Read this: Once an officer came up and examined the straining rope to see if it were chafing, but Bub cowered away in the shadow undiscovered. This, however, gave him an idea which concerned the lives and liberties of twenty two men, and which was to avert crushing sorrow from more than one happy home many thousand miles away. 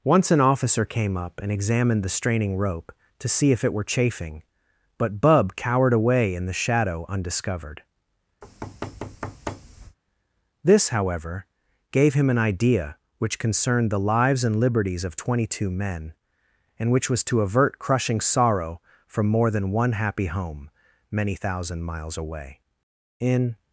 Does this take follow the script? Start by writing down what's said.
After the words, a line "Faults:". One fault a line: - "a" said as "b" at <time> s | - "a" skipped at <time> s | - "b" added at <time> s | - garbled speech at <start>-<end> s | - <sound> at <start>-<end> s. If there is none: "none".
Once an officer came up and examined the straining rope to see if it were chafing, but Bub cowered away in the shadow undiscovered. This, however, gave him an idea which concerned the lives and liberties of twenty two men, and which was to avert crushing sorrow from more than one happy home many thousand miles away. In
Faults:
- thud at 8.4-10.0 s
- "In" added at 23.2 s